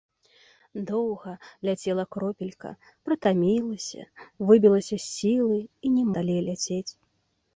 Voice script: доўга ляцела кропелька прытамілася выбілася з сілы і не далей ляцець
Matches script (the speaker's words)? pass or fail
pass